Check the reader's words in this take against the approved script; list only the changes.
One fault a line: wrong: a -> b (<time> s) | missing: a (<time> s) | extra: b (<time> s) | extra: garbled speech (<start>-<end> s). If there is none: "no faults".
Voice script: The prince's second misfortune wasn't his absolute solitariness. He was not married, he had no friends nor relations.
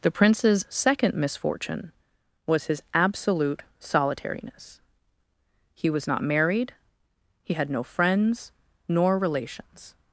wrong: wasn't -> was (2.5 s)